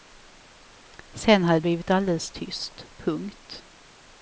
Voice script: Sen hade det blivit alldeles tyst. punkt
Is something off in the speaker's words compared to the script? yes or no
no